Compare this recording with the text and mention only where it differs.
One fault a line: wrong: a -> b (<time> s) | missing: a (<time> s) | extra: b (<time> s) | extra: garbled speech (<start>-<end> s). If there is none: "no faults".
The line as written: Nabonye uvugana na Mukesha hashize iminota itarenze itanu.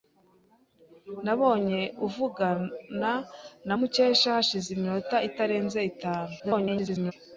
extra: garbled speech (6.4-7.1 s)